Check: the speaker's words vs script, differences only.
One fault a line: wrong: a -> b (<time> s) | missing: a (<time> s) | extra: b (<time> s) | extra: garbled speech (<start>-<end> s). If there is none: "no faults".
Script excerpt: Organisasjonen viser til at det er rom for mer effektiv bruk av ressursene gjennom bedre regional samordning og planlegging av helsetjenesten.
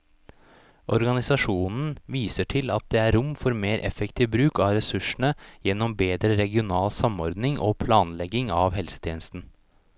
no faults